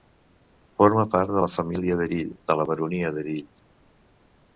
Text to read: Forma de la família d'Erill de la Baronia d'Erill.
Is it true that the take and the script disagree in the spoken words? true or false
true